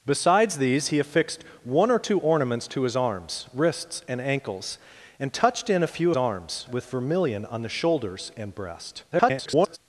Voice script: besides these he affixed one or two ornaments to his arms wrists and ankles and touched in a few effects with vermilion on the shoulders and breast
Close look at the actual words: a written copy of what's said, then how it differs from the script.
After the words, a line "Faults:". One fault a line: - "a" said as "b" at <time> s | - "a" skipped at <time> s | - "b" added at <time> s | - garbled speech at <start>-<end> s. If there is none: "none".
besides these he affixed one or two ornaments to his arms wrists and ankles and touched in a few arms with vermilion on the shoulders and breast [garbled]
Faults:
- "effects" said as "arms" at 6.2 s
- garbled speech at 9.1-9.8 s